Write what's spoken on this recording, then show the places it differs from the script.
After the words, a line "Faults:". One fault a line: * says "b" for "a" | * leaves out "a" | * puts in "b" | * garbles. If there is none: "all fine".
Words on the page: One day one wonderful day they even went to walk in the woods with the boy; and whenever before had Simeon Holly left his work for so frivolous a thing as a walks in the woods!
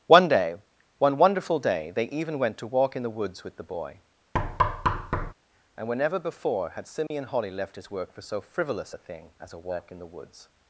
One day one wonderful day they even went to walk in the woods with the boy; and whenever before had Simeon Holly left his work for so frivolous a thing as a walk in the woods!
Faults:
* says "walk" for "walks"